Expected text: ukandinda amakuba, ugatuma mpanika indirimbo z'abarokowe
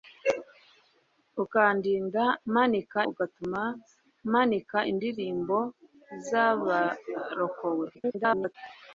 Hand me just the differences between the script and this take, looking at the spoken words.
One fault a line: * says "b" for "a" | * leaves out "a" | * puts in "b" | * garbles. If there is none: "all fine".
* says "mpanika" for "amakuba"
* garbles